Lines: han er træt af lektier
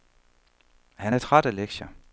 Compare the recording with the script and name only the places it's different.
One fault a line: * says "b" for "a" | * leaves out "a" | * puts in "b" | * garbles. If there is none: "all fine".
all fine